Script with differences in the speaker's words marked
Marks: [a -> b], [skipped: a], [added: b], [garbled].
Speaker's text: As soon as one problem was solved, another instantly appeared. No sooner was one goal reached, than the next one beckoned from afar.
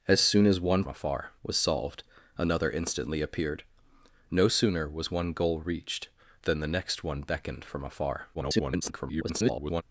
As soon as one [problem -> afar] was solved, another instantly appeared. No sooner was one goal reached, than the next one beckoned from afar. [garbled]